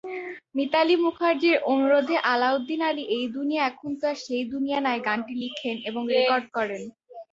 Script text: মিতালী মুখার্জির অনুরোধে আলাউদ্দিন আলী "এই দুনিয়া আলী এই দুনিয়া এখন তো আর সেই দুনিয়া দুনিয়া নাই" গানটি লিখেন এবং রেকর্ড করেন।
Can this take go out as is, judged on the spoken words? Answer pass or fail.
fail